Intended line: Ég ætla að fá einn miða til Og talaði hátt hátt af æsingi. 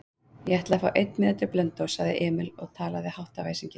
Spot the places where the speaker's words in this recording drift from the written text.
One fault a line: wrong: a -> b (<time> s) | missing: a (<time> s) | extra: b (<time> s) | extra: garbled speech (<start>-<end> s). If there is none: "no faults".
extra: Blönduóss sagði Emil (1.6 s)
missing: hátt (3.4 s)